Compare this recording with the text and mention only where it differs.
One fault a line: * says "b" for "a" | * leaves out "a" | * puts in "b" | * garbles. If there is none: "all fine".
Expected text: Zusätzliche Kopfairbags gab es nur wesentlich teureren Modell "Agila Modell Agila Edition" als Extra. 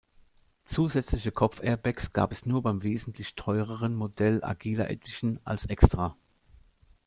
* puts in "beim"
* leaves out "Modell Agila"